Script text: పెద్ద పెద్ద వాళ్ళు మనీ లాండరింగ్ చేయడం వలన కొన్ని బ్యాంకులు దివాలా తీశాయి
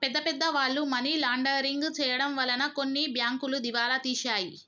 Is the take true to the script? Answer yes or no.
yes